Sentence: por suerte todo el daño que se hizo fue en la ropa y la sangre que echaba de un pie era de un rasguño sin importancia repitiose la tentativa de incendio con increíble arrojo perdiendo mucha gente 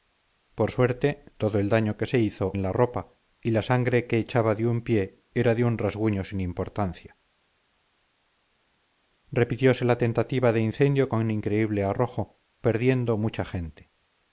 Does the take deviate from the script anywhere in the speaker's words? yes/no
yes